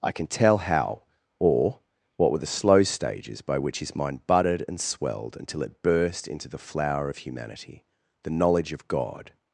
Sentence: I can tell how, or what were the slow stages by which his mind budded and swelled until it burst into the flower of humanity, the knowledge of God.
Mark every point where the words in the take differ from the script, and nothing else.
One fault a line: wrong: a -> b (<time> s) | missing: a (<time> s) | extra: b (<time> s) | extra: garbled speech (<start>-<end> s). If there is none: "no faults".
no faults